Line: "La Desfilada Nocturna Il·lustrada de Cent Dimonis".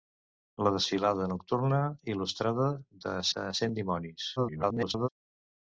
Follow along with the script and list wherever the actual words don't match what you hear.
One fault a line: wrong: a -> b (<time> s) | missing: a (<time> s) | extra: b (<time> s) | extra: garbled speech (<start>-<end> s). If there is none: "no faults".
extra: de (3.4 s)
extra: garbled speech (4.4-5.1 s)